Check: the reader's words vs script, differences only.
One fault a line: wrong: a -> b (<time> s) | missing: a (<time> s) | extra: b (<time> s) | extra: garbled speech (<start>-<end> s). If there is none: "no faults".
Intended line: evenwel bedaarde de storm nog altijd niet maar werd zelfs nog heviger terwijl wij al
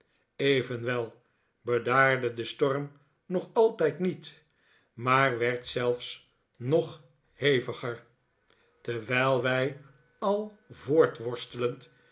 no faults